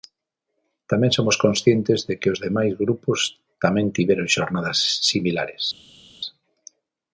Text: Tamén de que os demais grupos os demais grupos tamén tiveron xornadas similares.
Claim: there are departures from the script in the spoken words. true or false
true